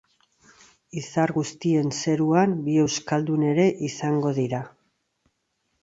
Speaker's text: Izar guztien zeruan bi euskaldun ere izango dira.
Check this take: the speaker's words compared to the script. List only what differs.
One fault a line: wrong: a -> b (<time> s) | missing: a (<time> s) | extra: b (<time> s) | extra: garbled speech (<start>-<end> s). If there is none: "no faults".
no faults